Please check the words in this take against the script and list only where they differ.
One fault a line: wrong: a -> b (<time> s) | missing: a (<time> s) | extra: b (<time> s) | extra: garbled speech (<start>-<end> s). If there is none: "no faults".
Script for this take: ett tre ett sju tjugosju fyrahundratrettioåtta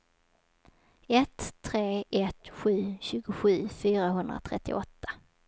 no faults